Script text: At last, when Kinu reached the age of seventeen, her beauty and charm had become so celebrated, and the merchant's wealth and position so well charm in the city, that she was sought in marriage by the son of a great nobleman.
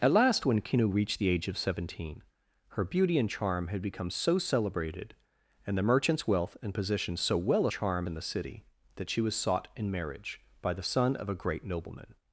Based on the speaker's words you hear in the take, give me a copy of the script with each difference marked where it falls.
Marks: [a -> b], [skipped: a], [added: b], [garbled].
At last, when Kinu reached the age of seventeen, her beauty and charm had become so celebrated, and the merchant's wealth and position so well charm in the city, that she was sought in marriage by the son of a great nobleman.